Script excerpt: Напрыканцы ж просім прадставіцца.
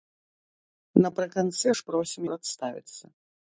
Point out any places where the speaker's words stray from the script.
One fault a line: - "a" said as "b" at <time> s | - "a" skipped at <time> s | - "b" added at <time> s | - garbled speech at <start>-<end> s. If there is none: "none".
none